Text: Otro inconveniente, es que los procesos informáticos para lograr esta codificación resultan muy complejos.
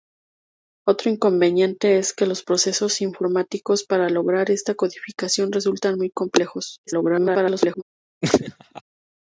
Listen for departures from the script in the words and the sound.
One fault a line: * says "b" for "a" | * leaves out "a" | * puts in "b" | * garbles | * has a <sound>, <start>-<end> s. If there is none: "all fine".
* garbles
* has a laugh, 8.2-8.8 s